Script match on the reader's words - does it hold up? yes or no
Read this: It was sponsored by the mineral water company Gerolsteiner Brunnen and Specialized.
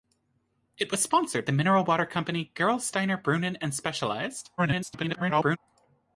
no